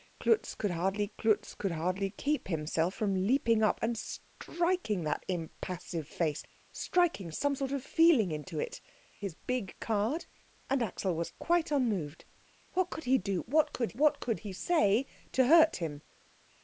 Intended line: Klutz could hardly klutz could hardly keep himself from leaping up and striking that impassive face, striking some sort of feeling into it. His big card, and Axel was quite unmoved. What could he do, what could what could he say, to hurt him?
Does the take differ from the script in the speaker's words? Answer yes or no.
no